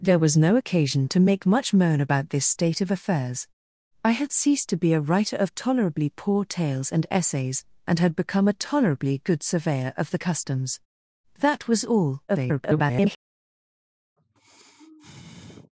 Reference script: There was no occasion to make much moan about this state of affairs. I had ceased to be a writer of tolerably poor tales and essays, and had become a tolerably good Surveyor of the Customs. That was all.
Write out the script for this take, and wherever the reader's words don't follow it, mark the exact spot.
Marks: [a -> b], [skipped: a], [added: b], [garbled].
There was no occasion to make much moan about this state of affairs. I had ceased to be a writer of tolerably poor tales and essays, and had become a tolerably good Surveyor of the Customs. That was all. [garbled]